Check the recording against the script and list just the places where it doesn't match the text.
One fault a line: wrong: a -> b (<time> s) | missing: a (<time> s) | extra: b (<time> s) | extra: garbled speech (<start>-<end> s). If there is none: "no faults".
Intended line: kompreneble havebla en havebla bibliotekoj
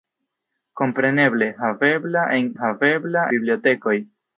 no faults